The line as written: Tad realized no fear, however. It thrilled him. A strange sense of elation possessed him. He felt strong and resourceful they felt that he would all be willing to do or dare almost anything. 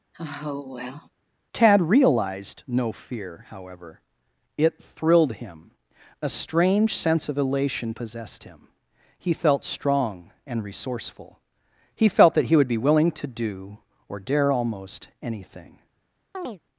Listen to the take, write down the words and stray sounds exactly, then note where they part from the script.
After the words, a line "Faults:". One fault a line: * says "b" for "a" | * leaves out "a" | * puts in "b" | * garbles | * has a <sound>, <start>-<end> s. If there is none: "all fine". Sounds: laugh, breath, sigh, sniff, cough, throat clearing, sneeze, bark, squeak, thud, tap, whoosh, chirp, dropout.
Tad realized no fear, however. It thrilled him. A strange sense of elation possessed him. He felt strong and resourceful he felt that he would be willing to do or dare almost anything.
Faults:
* has a sigh, 0.1-1.1 s
* says "he" for "they"
* leaves out "all"
* has a chirp, 16.3-16.6 s